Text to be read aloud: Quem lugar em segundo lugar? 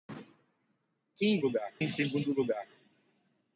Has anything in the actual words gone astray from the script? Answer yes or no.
no